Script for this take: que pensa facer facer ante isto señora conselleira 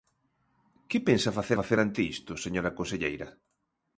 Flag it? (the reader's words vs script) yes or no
no